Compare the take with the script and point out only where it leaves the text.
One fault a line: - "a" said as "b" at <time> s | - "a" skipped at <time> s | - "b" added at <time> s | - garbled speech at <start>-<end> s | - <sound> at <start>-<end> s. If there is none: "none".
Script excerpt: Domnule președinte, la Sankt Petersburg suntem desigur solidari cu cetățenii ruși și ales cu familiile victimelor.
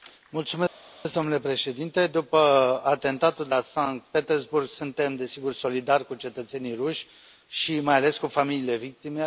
- "după atentatul de" added at 2.1 s
- "mai" added at 7.8 s